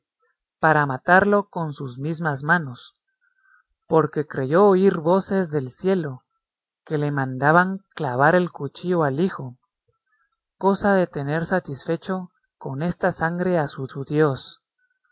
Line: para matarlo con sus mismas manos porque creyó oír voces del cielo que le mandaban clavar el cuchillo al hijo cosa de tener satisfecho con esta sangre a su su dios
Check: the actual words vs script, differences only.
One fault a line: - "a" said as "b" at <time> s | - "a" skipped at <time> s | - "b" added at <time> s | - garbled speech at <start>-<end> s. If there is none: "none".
none